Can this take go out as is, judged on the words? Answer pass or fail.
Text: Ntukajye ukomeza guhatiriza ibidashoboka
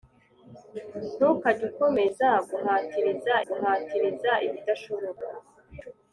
fail